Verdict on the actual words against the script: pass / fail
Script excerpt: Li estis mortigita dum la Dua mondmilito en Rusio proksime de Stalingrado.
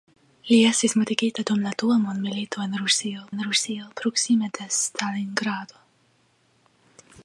fail